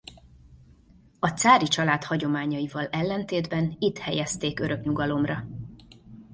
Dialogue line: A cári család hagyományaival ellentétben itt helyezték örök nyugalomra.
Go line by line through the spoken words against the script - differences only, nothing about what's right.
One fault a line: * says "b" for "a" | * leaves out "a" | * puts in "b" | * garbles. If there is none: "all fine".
all fine